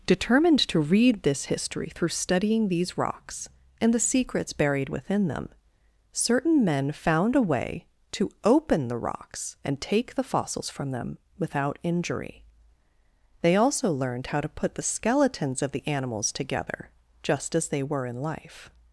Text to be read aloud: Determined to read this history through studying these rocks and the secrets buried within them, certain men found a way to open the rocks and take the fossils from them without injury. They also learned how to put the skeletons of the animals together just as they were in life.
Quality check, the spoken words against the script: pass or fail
pass